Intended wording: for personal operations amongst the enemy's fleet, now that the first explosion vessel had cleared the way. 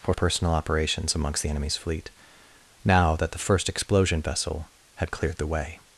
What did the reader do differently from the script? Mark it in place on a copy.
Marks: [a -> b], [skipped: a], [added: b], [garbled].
for personal operations amongst the enemy's fleet, now that the first explosion vessel had cleared the way.